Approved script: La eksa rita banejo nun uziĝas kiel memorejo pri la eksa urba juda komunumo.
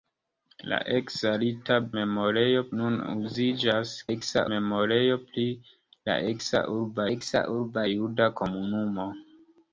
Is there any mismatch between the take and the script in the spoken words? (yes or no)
yes